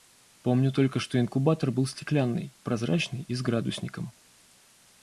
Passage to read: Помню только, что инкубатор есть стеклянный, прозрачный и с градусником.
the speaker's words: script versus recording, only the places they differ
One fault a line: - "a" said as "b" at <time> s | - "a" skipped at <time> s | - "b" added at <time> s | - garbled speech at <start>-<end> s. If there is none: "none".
- "есть" said as "был" at 1.7 s